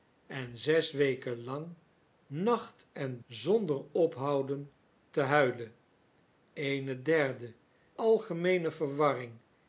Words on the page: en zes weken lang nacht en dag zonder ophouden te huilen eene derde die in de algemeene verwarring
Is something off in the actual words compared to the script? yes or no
yes